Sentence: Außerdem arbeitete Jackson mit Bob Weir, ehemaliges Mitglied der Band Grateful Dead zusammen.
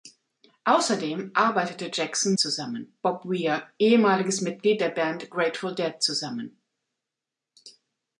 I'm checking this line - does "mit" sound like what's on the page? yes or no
no